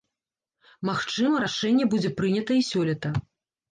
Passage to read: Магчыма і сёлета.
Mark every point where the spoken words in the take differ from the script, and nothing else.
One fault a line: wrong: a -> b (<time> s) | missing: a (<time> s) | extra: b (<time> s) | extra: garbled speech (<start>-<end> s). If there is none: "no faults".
extra: рашэнне будзе прынята (1.4 s)